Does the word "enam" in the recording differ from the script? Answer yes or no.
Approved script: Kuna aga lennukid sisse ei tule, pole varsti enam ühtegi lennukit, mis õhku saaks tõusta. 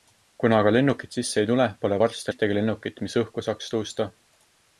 yes